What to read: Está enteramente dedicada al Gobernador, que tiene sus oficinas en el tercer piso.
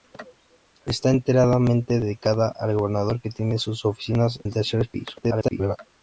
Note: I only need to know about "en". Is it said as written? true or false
false